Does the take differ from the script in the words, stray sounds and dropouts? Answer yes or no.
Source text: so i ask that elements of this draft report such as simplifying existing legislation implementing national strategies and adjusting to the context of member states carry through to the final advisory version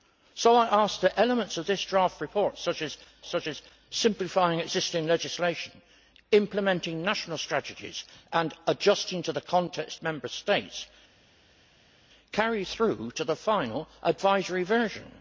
yes